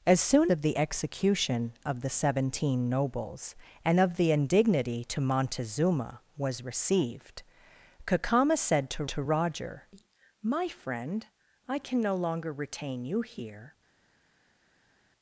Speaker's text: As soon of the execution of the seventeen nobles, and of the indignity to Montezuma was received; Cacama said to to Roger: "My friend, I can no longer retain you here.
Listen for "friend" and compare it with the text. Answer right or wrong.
right